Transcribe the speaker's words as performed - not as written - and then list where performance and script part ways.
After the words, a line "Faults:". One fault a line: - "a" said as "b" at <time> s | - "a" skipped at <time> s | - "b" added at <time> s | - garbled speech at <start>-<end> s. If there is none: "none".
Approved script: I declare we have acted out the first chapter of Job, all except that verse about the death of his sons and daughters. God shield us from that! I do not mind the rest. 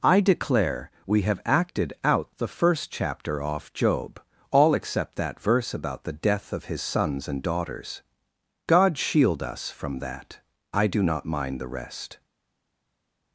I declare we have acted out the first chapter off Job, all except that verse about the death of his sons and daughters. God shield us from that! I do not mind the rest.
Faults:
- "of" said as "off" at 3.4 s